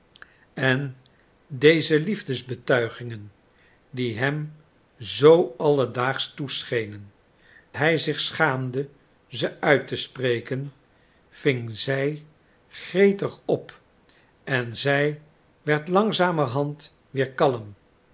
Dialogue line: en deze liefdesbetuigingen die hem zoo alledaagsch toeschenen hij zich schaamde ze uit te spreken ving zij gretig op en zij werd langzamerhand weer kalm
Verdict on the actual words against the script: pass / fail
pass